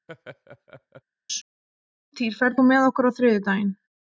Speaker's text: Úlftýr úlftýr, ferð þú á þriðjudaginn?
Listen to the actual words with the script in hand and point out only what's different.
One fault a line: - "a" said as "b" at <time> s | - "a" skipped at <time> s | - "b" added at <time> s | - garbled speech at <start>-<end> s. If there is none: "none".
- "úlftýr" skipped at 2.3 s
- "með okkur" added at 2.7 s